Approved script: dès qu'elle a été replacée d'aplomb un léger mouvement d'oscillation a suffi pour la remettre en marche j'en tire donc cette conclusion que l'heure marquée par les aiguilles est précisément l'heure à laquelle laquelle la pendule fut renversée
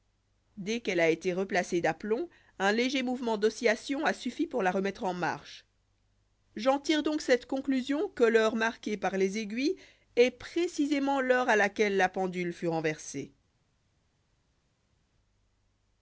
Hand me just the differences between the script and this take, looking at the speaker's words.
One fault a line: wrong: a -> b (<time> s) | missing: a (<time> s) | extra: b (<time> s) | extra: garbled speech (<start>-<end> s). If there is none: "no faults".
missing: laquelle (12.0 s)